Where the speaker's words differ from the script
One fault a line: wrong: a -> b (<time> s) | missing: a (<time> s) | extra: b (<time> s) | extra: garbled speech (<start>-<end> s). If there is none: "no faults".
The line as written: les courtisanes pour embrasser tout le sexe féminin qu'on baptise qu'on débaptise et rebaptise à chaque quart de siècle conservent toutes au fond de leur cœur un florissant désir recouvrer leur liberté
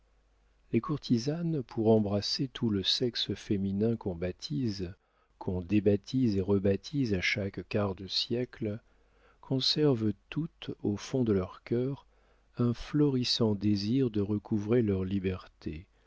extra: de (14.1 s)